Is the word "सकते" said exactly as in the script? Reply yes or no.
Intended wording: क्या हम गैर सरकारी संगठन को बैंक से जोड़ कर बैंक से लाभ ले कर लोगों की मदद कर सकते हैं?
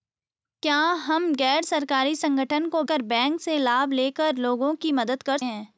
no